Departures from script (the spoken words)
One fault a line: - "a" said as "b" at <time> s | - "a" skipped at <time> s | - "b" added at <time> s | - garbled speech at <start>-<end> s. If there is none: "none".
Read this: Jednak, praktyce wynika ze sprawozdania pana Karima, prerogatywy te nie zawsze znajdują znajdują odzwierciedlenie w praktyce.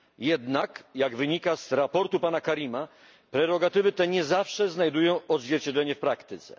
- "praktyce" said as "jak" at 0.9 s
- "znajdują" skipped at 5.2 s